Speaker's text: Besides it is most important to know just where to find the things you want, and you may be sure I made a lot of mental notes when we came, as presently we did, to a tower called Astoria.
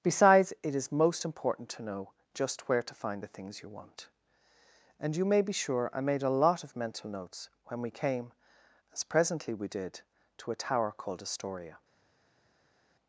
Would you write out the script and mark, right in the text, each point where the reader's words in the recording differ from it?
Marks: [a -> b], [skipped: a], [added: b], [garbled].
Besides it is most important to know just where to find the things you want, and you may be sure I made a lot of mental notes when we came, as presently we did, to a tower called Astoria.